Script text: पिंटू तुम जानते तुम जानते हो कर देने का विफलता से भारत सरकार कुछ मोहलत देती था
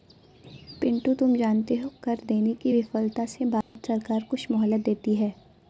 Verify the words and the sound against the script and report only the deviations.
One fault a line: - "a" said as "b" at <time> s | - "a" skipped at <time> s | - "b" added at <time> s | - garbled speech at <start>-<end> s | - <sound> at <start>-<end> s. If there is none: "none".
- "तुम जानते" skipped at 1.8 s
- "का" said as "की" at 2.6 s
- dropout at 3.6-3.8 s
- "था" said as "है" at 5.2 s